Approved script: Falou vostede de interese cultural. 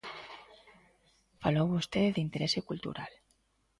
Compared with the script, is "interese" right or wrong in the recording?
right